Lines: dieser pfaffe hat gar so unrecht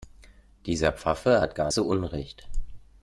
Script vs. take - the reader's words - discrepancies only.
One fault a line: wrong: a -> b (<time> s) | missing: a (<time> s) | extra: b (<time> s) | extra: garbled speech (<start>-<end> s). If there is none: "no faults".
no faults